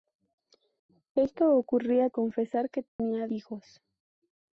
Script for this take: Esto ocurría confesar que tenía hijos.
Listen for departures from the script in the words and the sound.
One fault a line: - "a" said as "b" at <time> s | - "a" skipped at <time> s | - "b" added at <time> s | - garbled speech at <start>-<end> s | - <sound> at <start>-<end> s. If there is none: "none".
- dropout at 2.9-3.0 s